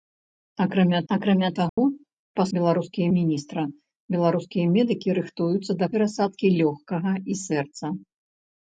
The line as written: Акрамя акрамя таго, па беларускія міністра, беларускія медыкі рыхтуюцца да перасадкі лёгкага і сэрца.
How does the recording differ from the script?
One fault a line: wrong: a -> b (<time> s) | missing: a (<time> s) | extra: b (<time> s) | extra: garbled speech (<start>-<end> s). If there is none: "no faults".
no faults